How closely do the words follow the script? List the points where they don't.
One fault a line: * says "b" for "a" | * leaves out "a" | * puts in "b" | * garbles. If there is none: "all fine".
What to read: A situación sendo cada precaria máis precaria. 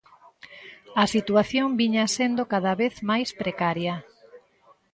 * puts in "viña"
* says "vez" for "precaria"